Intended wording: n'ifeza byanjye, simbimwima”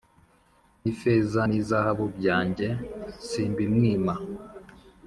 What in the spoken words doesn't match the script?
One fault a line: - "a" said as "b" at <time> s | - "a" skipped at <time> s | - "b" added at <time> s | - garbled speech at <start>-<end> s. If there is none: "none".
- "n'izahabu" added at 1.5 s